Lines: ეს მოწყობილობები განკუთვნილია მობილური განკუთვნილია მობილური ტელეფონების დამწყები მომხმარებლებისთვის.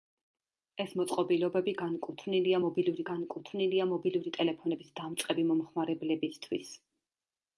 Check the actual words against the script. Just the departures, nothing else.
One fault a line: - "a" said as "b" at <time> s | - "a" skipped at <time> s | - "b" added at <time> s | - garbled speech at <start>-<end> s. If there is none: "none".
none